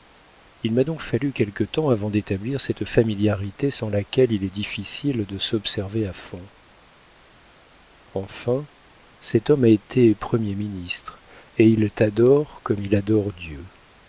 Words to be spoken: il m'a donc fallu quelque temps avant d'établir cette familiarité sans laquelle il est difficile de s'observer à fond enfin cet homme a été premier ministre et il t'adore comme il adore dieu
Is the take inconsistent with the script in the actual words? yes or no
no